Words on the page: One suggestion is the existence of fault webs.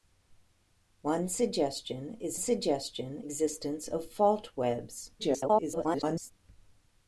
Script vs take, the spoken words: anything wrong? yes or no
yes